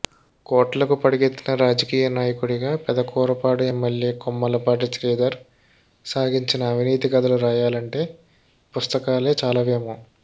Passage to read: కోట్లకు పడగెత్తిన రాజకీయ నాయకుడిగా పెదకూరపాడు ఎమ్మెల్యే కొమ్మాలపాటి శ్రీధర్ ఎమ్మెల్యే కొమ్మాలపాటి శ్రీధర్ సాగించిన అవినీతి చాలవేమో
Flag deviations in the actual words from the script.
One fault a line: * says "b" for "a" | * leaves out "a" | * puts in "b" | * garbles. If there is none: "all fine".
* says "సాగించిన అవినీతి కథలు రాయాలంటే పుస్తకాలే" for "ఎమ్మెల్యే కొమ్మాలపాటి శ్రీధర్ సాగించిన అవినీతి"